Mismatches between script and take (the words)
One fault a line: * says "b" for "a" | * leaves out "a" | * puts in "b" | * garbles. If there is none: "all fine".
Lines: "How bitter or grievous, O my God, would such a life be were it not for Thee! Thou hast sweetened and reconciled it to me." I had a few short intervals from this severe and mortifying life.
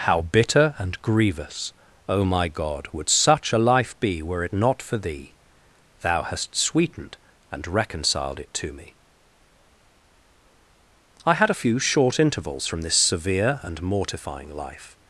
* says "and" for "or"